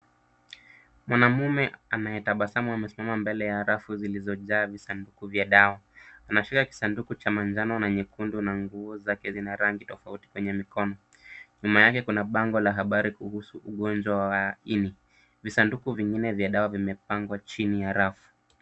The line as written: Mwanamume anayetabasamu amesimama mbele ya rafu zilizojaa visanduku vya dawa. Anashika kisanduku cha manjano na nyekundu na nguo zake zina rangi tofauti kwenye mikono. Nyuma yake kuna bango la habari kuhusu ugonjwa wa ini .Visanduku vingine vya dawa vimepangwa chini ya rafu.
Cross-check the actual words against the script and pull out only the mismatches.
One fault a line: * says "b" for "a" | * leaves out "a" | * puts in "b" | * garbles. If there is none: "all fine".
all fine